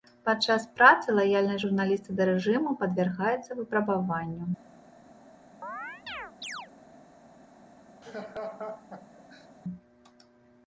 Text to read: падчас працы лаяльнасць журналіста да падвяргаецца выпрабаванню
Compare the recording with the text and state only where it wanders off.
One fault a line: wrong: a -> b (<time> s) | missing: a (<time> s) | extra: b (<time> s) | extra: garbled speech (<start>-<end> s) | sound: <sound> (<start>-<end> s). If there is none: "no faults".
extra: рэжыму (2.3 s)
sound: chirp (5.6-6.7 s)
sound: laugh (8.0-9.5 s)